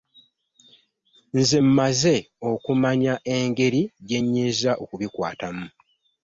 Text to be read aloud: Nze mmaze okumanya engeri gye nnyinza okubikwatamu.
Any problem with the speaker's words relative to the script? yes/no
no